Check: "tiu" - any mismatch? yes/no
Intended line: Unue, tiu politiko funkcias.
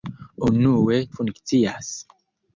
yes